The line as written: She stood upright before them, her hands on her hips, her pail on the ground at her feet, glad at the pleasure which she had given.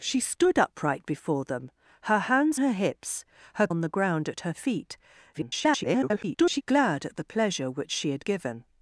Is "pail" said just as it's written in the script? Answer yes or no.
no